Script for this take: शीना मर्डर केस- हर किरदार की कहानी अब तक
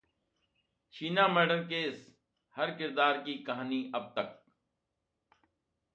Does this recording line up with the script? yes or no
yes